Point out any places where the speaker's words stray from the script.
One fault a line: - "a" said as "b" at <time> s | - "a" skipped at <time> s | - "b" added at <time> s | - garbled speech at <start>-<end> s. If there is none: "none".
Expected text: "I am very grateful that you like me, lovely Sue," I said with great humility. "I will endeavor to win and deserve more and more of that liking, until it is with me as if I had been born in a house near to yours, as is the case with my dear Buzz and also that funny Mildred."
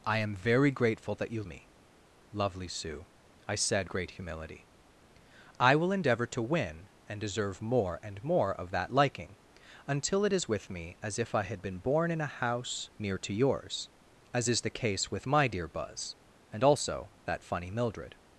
- "like" skipped at 1.4 s
- "with" skipped at 3.9 s